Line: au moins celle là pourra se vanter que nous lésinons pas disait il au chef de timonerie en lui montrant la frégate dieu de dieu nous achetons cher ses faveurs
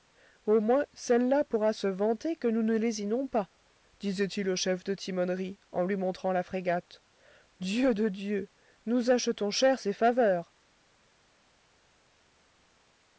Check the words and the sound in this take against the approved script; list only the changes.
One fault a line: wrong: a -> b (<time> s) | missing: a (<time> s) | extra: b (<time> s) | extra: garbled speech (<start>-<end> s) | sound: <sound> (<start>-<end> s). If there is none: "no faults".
extra: ne (2.6 s)